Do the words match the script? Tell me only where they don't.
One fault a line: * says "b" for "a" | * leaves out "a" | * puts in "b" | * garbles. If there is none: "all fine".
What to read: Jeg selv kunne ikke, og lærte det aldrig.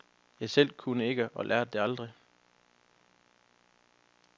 all fine